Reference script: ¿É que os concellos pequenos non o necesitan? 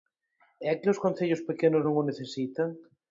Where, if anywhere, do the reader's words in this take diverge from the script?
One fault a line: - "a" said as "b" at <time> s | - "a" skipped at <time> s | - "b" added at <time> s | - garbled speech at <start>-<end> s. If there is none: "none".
none